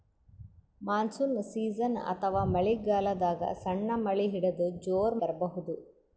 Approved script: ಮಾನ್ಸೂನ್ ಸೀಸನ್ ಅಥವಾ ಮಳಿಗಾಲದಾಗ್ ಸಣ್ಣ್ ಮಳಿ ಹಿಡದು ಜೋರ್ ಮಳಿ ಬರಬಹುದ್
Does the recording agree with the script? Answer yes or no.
no